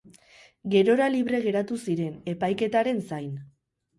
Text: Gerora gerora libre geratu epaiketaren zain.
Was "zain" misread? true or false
false